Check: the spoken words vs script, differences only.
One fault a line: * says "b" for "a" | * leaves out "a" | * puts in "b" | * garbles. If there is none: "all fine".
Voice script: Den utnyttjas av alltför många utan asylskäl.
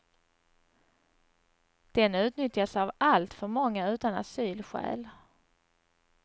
all fine